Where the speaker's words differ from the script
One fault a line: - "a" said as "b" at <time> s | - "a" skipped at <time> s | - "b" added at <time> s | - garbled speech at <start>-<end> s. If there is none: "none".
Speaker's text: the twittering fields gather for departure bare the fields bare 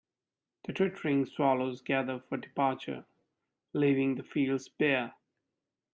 - "fields" said as "swallows" at 1.3 s
- "bare" said as "leaving" at 3.7 s